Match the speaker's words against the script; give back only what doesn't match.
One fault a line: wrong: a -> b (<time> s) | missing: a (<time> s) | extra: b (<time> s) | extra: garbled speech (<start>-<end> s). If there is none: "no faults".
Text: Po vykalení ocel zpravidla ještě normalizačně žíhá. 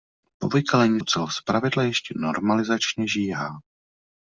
no faults